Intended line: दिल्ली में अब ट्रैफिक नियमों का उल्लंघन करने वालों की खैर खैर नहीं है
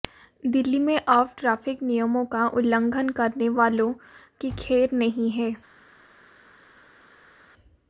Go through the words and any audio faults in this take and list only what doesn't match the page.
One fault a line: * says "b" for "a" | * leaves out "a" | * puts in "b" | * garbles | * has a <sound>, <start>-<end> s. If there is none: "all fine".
* leaves out "खैर"